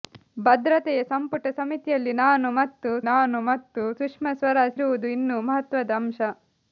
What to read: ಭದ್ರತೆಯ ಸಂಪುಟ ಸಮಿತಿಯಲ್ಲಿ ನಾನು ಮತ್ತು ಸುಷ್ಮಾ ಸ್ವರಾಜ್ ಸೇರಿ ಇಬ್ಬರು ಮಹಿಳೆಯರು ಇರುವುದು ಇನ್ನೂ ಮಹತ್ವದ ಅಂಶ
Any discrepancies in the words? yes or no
yes